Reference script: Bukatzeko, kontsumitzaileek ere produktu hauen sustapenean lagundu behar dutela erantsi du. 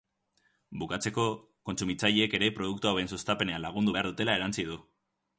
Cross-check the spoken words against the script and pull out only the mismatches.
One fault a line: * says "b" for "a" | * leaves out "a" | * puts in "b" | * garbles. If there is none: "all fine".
all fine